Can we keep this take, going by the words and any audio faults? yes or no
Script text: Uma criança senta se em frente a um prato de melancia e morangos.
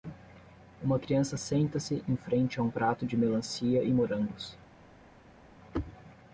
yes